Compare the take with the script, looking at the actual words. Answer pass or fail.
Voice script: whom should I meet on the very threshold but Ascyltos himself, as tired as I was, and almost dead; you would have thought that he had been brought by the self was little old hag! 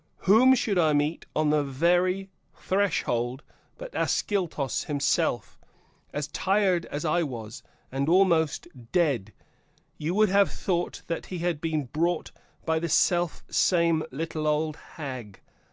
fail